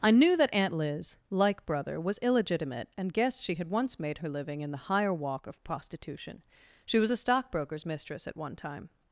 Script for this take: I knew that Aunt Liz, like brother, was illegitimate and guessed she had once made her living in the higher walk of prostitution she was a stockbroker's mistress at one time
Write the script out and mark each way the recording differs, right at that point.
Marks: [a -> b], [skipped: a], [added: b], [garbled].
I knew that Aunt Liz, like brother, was illegitimate and guessed she had once made her living in the higher walk of prostitution she was a stockbroker's mistress at one time